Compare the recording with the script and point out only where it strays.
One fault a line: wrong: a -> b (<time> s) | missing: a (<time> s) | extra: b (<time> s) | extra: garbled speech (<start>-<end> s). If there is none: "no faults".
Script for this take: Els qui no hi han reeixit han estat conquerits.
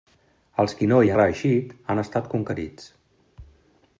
missing: han (1.1 s)